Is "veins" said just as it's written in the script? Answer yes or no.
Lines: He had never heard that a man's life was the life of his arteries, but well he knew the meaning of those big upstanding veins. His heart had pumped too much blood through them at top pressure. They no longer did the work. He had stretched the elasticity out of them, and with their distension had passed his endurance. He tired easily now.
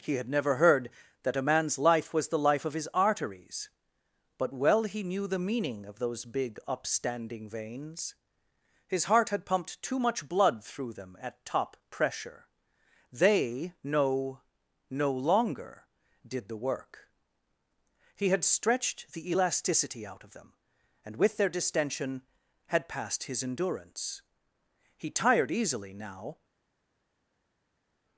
yes